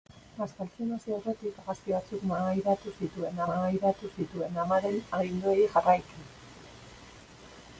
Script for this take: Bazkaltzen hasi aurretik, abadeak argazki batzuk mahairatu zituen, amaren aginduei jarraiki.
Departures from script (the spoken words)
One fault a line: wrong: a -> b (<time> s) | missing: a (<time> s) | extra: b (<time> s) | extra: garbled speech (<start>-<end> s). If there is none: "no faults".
missing: abadeak (1.6 s)
extra: mahairatu zituen (3.5 s)